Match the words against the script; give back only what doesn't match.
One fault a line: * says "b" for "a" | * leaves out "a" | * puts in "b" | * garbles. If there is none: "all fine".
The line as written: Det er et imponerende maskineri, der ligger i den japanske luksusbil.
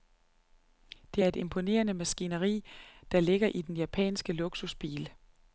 all fine